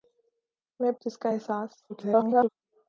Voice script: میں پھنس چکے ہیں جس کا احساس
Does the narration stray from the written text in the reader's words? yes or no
yes